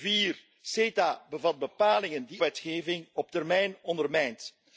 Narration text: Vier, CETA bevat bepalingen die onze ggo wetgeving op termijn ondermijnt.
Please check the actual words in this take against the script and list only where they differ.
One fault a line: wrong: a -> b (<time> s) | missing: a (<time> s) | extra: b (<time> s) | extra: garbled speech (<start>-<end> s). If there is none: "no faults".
missing: onze ggo (2.4 s)